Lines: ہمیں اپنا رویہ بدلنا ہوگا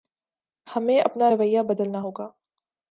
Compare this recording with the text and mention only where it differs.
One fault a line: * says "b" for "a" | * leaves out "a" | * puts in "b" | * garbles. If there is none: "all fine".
all fine